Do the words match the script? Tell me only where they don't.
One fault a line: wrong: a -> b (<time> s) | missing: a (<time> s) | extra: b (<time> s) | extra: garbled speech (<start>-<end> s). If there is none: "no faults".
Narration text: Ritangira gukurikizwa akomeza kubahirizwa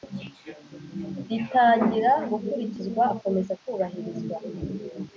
no faults